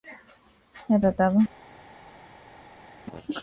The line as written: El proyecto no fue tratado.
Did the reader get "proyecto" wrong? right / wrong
wrong